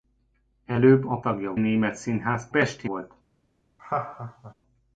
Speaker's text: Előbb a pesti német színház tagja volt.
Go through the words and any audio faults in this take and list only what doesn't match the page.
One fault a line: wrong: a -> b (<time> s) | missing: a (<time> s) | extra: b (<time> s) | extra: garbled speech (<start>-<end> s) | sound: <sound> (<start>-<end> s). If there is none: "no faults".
wrong: pesti -> tagja (1.2 s)
wrong: tagja -> pesti (2.5 s)
sound: laugh (3.8-4.5 s)